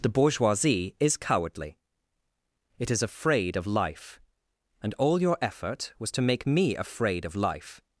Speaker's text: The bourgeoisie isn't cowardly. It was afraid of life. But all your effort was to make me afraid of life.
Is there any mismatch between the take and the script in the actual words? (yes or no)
yes